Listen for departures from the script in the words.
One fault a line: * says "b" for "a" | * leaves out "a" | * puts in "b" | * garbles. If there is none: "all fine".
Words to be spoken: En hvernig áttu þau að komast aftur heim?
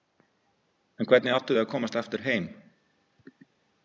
all fine